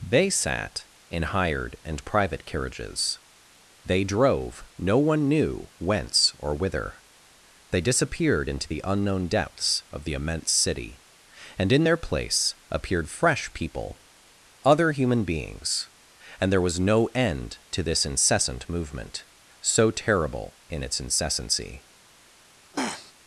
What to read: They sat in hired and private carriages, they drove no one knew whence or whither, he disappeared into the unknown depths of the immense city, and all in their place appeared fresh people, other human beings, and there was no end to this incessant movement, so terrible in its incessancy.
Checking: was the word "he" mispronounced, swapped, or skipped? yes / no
yes